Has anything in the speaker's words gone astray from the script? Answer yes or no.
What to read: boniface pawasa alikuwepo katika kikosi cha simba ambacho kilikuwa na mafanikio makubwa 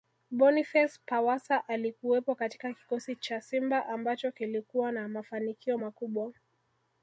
no